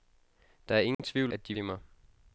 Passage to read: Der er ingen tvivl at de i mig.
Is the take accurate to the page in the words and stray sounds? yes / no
no